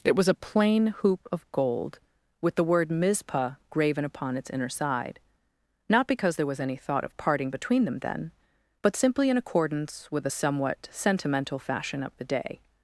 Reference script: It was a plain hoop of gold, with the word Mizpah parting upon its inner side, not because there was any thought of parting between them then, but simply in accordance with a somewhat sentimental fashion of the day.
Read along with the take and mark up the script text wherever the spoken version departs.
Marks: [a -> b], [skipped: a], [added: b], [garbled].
It was a plain hoop of gold, with the word Mizpah [parting -> graven] upon its inner side, not because there was any thought of parting between them then, but simply in accordance with a somewhat sentimental fashion of the day.